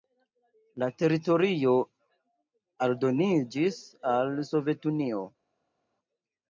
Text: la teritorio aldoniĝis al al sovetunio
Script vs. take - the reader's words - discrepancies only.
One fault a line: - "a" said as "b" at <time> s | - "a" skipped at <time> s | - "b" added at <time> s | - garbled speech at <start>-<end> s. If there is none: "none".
- "al" skipped at 4.4 s